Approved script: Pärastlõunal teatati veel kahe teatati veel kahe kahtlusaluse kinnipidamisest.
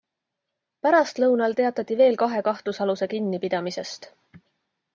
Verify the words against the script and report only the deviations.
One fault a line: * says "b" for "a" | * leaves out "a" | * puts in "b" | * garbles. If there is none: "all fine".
* leaves out "teatati veel kahe"